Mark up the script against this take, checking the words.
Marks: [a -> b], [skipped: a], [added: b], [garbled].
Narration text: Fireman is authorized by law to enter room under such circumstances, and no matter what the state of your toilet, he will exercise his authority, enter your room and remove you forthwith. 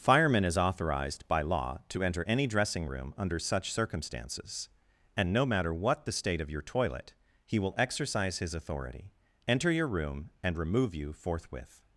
Fireman is authorized by law to enter [added: any dressing] room under such circumstances, and no matter what the state of your toilet, he will exercise his authority, enter your room and remove you forthwith.